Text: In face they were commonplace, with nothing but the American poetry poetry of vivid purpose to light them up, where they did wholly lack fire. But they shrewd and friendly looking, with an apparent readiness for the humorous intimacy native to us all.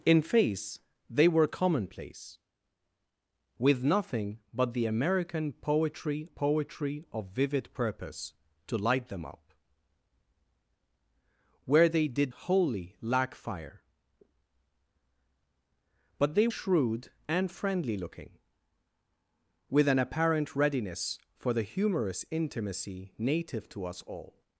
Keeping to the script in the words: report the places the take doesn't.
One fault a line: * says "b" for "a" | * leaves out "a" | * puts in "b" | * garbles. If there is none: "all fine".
all fine